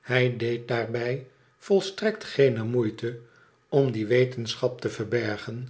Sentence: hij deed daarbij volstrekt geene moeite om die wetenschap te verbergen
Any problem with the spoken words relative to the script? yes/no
no